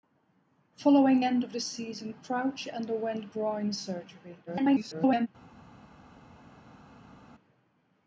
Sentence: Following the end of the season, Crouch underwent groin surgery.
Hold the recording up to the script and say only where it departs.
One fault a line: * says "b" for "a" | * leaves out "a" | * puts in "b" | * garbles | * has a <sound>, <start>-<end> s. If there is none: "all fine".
* leaves out "the"
* garbles